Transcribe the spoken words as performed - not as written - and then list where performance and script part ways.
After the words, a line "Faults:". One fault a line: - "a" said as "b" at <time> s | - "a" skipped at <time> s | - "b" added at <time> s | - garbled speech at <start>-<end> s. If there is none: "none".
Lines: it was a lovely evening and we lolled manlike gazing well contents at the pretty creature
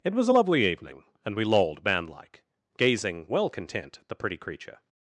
it was a lovely evening and we lolled manlike gazing well content at the pretty creature
Faults:
- "contents" said as "content" at 3.5 s